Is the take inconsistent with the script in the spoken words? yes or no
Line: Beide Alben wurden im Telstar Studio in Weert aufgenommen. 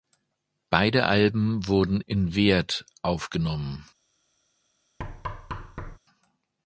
yes